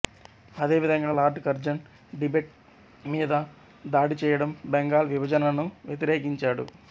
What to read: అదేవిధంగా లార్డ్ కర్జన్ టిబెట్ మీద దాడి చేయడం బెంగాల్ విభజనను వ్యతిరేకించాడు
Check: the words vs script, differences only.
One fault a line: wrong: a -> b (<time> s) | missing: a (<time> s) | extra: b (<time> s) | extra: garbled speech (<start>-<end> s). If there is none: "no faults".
no faults